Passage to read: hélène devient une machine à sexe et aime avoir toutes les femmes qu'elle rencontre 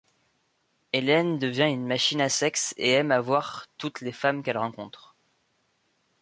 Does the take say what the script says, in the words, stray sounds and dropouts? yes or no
yes